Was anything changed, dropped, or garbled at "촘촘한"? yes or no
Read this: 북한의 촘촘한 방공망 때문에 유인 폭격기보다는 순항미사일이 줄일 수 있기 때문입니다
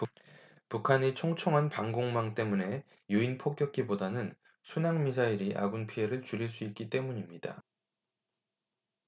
no